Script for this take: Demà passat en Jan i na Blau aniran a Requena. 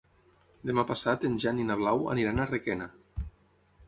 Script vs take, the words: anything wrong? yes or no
no